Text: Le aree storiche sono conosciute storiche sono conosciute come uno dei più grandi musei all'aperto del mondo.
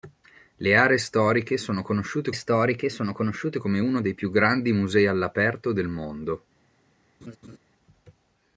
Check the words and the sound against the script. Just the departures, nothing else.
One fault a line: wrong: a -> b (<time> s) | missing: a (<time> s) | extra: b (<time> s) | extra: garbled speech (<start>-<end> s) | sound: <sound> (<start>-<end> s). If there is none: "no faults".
sound: laugh (7.2-7.6 s)